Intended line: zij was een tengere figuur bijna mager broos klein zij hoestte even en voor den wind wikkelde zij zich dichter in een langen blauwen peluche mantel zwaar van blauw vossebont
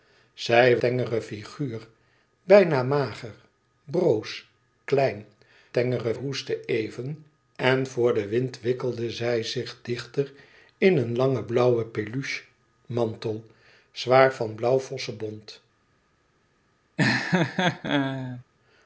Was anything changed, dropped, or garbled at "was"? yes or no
yes